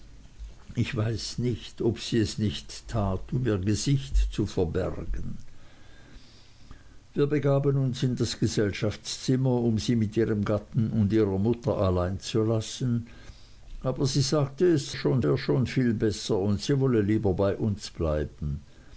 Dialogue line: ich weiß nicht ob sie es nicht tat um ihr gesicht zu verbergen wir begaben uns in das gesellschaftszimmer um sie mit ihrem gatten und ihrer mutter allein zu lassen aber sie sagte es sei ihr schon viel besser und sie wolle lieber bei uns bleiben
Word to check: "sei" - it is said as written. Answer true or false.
false